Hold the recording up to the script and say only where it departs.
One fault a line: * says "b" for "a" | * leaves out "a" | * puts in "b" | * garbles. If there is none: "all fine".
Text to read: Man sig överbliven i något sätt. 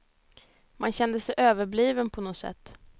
* puts in "kände"
* says "på" for "i"